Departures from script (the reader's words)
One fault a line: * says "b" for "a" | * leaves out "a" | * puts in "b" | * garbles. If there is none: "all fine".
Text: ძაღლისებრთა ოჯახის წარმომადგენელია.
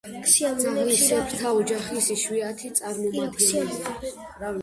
* puts in "იშვიათი"